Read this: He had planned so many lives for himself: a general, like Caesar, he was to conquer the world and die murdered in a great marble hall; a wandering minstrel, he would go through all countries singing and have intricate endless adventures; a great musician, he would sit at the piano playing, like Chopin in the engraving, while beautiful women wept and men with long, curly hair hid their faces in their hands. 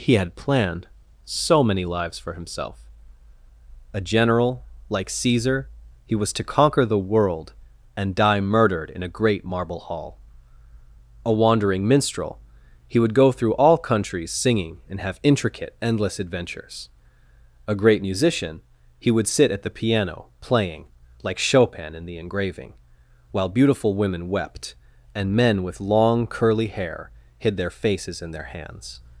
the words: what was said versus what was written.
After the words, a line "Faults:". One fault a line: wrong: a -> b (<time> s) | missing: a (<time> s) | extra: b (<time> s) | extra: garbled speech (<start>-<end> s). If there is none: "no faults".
He had planned so many lives for himself: a general, like Caesar, he was to conquer the world and die murdered in a great marble hall; a wandering minstrel, he would go through all countries singing and have intricate endless adventures; a great musician, he would sit at the piano playing, like Chopin in the engraving, while beautiful women wept and men with long, curly hair hid their faces in their hands.
Faults:
no faults